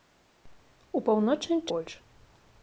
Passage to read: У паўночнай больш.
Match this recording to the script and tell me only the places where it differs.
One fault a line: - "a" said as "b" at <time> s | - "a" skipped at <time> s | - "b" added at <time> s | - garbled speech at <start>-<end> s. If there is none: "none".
none